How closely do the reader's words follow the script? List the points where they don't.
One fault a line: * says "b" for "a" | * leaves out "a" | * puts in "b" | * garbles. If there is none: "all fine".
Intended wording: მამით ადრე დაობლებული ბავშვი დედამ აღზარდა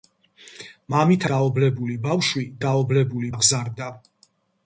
* leaves out "ადრე"
* says "დაობლებული" for "დედამ"